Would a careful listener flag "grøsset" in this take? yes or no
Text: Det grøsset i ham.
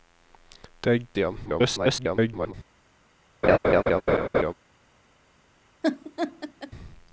yes